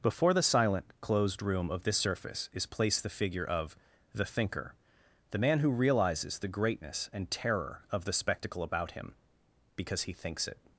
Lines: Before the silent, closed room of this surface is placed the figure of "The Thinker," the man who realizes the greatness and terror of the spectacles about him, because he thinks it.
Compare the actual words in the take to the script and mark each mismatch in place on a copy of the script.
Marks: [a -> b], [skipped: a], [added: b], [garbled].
Before the silent, closed room of this surface is placed the figure of "The Thinker," the man who realizes the greatness and terror of the [spectacles -> spectacle] about him, because he thinks it.